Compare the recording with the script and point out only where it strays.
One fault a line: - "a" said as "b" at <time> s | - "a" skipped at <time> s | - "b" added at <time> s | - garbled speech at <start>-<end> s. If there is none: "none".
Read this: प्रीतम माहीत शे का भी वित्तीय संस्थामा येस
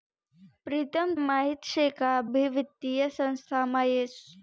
none